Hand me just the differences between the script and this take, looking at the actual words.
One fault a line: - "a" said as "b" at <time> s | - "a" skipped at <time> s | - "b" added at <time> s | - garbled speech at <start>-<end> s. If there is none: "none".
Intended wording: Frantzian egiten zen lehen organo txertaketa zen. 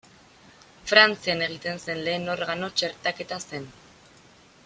none